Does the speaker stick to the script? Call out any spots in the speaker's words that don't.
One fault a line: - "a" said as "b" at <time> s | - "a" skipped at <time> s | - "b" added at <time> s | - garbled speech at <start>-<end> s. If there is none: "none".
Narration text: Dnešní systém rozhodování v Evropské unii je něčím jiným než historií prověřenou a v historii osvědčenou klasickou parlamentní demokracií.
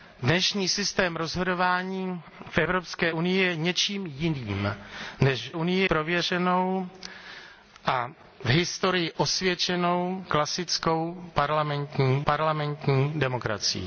- "historií" said as "unii" at 5.5 s
- "parlamentní" added at 12.2 s